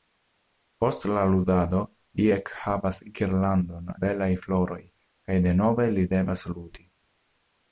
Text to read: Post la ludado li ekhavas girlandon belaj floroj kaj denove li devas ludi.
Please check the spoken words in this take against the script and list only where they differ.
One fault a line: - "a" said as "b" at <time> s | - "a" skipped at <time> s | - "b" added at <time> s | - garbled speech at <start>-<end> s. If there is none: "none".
none